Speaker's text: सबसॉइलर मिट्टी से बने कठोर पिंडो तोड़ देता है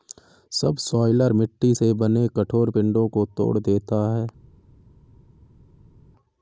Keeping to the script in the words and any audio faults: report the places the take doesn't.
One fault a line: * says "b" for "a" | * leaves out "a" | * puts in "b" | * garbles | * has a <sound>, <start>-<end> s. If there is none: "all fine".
* puts in "को"